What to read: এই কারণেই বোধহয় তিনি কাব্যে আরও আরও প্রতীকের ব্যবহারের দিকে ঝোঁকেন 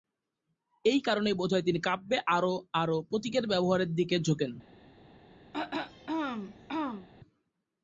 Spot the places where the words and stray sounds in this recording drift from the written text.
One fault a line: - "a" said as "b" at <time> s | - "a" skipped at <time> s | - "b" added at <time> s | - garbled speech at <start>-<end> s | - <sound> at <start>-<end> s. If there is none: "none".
- throat clearing at 5.5-7.1 s